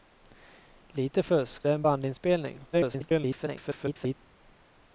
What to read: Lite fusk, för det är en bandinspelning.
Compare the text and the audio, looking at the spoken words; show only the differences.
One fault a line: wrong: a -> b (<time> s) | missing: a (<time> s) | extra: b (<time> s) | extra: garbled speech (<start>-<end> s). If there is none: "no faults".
missing: för (1.7 s)
extra: garbled speech (2.7-4.2 s)